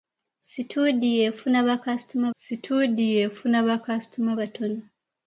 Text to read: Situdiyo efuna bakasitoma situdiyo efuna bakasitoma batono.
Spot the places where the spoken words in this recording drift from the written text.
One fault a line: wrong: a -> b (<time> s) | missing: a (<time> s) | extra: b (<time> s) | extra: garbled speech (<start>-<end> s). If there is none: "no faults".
no faults